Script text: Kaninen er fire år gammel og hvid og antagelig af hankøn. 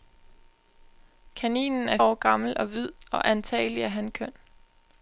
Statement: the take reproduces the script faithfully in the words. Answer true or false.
false